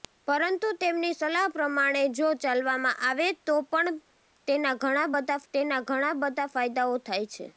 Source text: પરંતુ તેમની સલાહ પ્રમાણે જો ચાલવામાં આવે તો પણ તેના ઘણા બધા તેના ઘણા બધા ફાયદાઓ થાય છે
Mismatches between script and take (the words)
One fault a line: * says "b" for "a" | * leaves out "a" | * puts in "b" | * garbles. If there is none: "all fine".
all fine